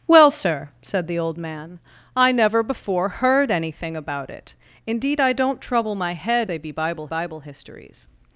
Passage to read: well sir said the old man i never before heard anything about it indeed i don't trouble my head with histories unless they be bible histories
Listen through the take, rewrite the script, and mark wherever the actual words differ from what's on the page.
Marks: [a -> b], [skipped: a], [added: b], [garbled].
well sir said the old man i never before heard anything about it indeed i don't trouble my head [skipped: with histories unless] they be bible [added: bible] histories